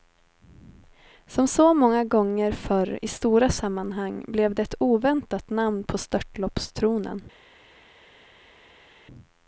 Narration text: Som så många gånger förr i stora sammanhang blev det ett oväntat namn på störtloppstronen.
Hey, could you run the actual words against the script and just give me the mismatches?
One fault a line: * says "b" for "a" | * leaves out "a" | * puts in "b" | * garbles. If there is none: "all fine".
all fine